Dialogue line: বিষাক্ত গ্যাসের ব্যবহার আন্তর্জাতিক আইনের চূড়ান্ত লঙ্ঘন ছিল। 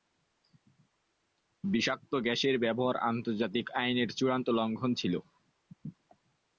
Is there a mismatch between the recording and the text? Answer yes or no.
no